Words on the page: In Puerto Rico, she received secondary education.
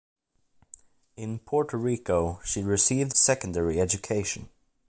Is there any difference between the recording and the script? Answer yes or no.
no